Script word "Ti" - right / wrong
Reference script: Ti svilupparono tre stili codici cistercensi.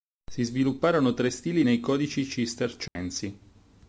wrong